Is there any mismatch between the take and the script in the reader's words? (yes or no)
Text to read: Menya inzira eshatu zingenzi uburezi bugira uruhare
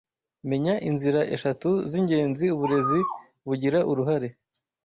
no